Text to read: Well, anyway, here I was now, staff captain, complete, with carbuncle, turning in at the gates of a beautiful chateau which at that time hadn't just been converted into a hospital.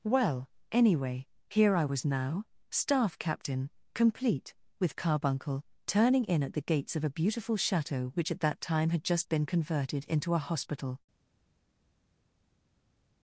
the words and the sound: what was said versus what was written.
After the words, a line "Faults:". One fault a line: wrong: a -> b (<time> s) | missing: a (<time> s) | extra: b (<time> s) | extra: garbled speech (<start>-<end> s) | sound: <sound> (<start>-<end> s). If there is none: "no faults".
Well, anyway, here I was now, staff captain, complete, with carbuncle, turning in at the gates of a beautiful chateau which at that time had just been converted into a hospital.
Faults:
wrong: hadn't -> had (8.9 s)